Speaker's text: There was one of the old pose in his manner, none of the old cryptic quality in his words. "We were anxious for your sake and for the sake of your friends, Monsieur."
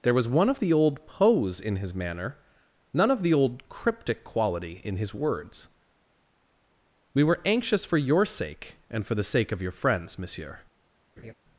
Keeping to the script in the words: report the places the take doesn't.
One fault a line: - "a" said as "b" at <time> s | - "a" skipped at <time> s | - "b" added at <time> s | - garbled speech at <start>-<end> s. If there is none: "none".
none